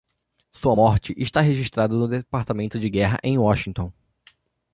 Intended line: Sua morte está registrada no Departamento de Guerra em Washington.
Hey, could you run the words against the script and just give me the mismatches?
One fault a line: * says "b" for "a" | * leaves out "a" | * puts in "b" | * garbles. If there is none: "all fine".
all fine